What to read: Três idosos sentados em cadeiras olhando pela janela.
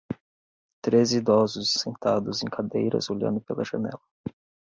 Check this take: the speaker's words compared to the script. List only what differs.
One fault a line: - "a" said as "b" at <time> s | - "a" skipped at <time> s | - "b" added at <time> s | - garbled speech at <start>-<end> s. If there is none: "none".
none